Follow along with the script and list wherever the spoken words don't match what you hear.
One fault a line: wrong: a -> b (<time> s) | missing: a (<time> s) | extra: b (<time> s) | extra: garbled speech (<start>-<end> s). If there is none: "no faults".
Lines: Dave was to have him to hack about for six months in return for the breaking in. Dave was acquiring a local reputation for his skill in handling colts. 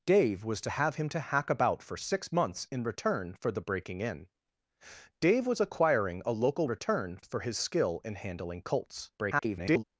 wrong: reputation -> return (6.7 s)
extra: garbled speech (9.2-9.8 s)